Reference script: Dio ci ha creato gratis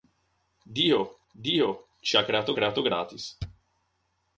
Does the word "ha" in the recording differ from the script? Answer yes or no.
no